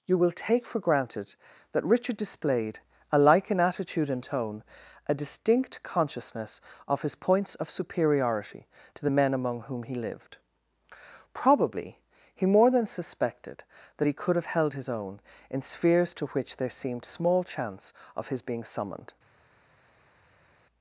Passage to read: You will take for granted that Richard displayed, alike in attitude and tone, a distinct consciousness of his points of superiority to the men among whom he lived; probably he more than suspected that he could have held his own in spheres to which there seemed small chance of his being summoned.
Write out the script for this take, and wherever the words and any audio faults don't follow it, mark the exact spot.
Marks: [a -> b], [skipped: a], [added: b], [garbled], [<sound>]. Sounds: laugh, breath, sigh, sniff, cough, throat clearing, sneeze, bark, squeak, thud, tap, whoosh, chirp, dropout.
You will take for granted that Richard displayed, alike in attitude and tone, a distinct consciousness of his points of superiority to the men among whom he lived; probably he more than suspected that he could have held his own in spheres to which there seemed small chance of his being summoned.